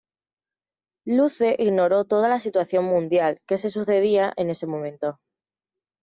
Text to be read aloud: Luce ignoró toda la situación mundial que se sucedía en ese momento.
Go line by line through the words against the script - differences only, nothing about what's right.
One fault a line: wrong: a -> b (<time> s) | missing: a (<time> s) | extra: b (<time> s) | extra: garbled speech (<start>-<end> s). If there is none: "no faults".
no faults